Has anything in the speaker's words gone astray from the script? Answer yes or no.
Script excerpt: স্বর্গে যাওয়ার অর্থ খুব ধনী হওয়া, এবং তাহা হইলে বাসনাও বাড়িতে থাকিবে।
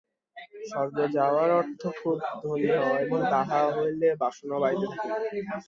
no